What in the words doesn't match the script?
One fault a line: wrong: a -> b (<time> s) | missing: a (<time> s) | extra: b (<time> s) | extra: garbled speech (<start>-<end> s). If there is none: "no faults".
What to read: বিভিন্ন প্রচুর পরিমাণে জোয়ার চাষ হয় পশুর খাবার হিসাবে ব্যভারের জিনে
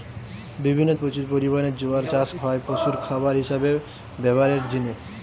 no faults